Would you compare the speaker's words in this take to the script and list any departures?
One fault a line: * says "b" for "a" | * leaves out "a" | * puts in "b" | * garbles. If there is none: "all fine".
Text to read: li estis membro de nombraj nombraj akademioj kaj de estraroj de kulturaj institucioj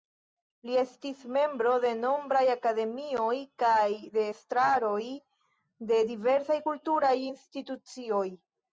* leaves out "nombraj"
* puts in "diversaj"